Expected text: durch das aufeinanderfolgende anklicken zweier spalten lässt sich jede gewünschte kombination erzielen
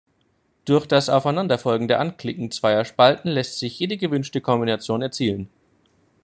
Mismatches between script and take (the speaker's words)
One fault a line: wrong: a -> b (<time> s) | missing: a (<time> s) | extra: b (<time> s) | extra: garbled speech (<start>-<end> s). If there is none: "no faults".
no faults